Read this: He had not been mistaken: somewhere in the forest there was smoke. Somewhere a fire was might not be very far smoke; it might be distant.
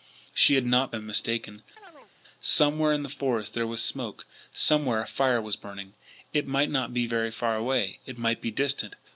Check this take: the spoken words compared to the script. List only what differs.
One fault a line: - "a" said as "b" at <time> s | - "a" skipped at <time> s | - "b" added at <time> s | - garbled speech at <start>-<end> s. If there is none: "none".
- "He" said as "She" at 0.3 s
- "burning It" added at 5.6 s
- "smoke" said as "away" at 7.6 s